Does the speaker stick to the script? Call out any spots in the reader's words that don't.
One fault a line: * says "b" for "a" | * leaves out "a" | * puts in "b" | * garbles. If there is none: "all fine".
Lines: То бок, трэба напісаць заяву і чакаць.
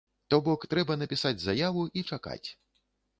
all fine